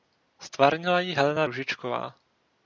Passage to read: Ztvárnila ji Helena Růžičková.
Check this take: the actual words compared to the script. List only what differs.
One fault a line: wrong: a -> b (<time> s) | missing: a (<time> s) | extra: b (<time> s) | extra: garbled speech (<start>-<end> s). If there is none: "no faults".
no faults